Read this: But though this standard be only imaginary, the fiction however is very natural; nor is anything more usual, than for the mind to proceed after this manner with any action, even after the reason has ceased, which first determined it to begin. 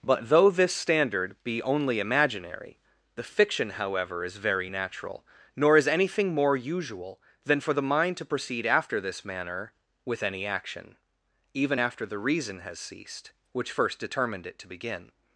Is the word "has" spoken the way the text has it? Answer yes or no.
yes